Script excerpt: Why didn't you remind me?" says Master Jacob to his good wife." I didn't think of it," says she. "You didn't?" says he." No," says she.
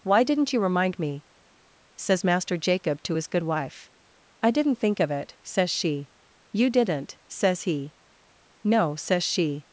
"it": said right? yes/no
yes